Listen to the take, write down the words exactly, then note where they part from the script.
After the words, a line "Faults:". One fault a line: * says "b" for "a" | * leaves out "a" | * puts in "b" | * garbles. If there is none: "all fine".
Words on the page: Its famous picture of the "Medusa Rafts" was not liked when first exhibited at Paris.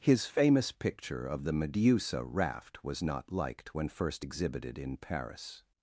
His famous picture of the "Medusa Raft" was not liked when first exhibited in Paris.
Faults:
* says "His" for "Its"
* says "Raft" for "Rafts"
* says "in" for "at"